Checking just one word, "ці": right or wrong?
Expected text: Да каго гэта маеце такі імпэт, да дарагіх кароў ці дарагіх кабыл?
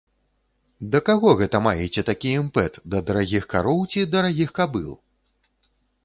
right